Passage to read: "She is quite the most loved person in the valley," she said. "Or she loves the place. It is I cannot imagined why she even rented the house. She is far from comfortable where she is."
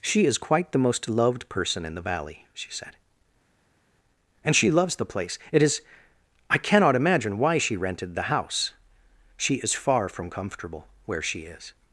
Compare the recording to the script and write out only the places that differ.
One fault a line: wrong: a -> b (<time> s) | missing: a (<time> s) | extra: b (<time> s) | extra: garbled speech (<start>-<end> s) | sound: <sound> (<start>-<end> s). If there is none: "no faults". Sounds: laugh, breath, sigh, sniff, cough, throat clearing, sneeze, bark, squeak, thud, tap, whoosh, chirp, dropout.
wrong: Or -> And (4.4 s)
wrong: imagined -> imagine (7.0 s)
missing: even (7.8 s)